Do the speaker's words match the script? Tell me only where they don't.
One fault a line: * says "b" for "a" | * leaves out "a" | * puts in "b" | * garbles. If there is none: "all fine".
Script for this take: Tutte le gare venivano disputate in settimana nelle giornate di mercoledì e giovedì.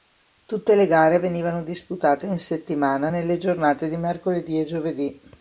all fine